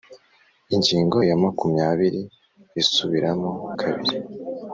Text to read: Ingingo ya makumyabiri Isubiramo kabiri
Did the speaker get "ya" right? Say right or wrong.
right